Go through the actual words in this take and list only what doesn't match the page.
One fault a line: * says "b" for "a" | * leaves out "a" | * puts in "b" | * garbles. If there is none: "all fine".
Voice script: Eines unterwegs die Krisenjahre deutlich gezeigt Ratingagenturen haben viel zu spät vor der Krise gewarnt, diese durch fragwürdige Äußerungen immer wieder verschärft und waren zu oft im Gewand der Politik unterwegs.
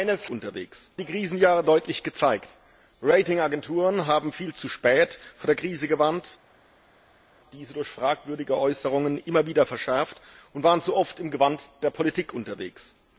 all fine